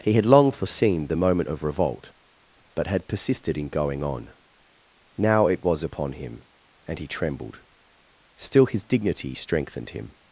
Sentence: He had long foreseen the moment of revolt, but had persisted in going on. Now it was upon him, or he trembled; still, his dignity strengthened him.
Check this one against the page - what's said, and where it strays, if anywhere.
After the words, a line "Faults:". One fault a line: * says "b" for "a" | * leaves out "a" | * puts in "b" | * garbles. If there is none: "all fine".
He had long foreseen the moment of revolt, but had persisted in going on. Now it was upon him, and he trembled; still, his dignity strengthened him.
Faults:
* says "and" for "or"